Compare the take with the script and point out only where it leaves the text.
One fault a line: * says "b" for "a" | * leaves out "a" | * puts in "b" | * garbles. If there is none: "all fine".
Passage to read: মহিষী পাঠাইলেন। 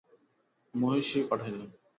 all fine